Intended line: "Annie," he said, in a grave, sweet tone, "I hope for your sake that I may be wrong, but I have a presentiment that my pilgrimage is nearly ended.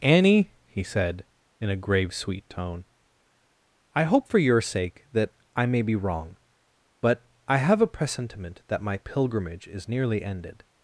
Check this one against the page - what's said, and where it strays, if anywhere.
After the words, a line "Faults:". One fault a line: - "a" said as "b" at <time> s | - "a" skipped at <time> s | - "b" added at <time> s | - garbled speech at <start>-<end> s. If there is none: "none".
"Annie," he said, in a grave, sweet tone, "I hope for your sake that I may be wrong, but I have a presentiment that my pilgrimage is nearly ended.
Faults:
none